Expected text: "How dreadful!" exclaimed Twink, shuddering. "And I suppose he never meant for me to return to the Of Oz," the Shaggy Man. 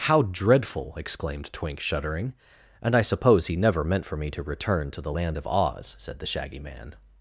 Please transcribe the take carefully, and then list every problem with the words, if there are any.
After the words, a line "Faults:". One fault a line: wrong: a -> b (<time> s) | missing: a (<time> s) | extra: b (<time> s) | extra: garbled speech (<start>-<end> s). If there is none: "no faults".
"How dreadful!" exclaimed Twink, shuddering. "And I suppose he never meant for me to return to the Land of Oz," said the Shaggy Man.
Faults:
extra: Land (5.1 s)
extra: said (6.0 s)